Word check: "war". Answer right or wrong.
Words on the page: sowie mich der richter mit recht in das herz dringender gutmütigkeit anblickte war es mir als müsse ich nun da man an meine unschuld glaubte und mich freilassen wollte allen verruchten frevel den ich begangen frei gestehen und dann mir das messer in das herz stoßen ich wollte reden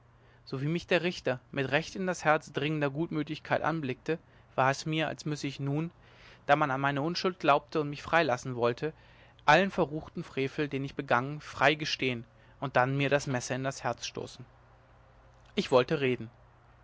right